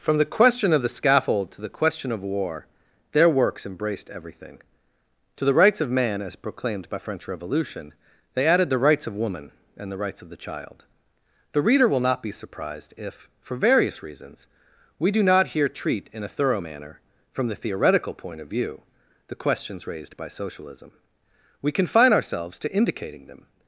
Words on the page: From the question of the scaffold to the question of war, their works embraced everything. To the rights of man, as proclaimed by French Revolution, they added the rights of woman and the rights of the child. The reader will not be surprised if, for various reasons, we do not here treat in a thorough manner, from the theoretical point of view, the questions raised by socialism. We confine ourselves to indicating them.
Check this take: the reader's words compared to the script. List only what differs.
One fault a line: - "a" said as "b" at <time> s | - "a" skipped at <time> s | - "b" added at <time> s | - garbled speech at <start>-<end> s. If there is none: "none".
none